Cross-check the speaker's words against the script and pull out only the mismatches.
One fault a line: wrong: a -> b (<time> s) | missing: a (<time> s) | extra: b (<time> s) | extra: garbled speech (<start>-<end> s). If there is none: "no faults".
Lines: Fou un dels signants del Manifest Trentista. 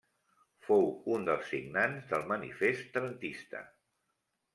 no faults